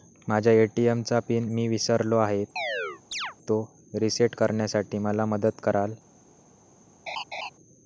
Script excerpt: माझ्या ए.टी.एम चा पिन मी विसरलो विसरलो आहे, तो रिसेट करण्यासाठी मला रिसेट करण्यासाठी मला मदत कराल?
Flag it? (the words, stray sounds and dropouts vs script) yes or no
yes